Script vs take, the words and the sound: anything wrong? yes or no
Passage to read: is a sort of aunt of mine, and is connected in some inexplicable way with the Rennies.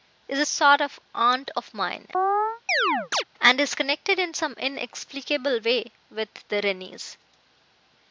yes